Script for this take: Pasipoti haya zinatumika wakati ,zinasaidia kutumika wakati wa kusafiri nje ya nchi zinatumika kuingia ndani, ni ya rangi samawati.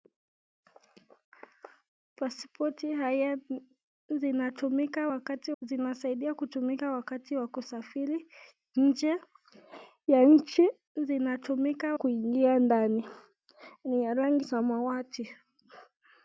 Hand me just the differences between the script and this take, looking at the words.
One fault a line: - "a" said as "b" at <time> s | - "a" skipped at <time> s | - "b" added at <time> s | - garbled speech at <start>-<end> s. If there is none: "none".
none